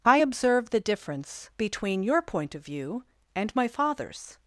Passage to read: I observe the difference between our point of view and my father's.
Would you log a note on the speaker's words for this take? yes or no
yes